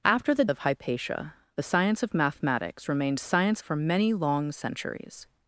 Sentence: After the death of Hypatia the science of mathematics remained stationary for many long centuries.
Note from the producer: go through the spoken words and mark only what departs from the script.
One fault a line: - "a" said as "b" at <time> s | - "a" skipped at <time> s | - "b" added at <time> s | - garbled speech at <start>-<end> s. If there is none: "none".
- "death" skipped at 0.5 s
- "stationary" said as "science" at 3.2 s